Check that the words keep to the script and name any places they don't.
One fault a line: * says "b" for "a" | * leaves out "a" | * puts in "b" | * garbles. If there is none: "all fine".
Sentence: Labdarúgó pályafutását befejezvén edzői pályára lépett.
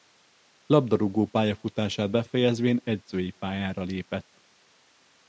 all fine